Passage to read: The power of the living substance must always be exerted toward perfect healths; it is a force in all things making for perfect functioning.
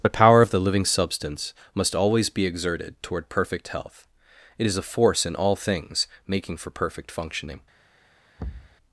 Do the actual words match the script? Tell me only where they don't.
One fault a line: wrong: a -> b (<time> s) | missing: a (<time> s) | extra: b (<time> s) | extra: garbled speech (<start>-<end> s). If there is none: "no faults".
wrong: healths -> health (3.7 s)